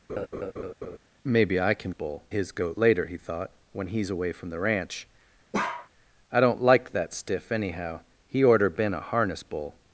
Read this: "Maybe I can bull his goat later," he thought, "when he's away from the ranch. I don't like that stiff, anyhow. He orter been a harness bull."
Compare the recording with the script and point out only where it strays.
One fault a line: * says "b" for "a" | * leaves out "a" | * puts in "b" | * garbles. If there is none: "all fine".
all fine